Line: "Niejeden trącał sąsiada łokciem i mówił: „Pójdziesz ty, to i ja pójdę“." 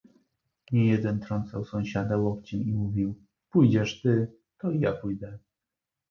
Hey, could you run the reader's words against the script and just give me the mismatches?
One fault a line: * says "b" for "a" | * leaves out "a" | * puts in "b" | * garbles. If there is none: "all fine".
all fine